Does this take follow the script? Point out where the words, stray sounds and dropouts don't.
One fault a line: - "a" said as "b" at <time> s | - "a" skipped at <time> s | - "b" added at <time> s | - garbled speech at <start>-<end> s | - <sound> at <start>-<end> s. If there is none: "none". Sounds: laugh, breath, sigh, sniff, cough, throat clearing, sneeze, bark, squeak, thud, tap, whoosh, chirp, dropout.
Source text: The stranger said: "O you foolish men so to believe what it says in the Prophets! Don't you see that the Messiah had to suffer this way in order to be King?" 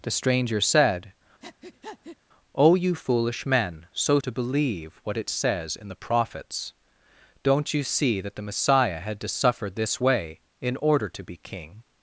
- breath at 1.4-2.2 s